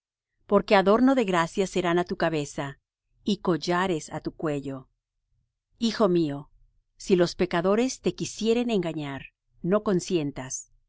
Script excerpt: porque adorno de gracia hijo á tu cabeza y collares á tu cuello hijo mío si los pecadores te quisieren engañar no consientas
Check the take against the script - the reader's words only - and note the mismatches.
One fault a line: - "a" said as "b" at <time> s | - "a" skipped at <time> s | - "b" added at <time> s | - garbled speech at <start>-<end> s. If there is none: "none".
- "hijo" said as "serán" at 1.7 s